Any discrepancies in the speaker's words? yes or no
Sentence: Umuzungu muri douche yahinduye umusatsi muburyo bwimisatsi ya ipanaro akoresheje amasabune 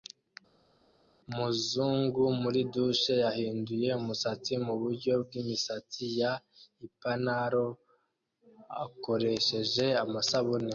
no